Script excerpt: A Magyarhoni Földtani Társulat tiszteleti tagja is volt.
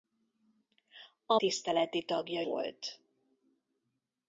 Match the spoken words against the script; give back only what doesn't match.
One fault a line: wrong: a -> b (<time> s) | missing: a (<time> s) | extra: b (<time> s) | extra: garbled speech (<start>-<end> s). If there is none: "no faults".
missing: Magyarhoni Földtani Társulat (1.4 s)
missing: is (2.4 s)